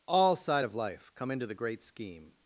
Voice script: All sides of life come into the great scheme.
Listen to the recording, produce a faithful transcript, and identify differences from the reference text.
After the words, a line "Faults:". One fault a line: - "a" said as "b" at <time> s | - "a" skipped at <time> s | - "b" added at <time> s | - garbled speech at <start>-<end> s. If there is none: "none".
All side of life come into the great scheme.
Faults:
- "sides" said as "side" at 0.3 s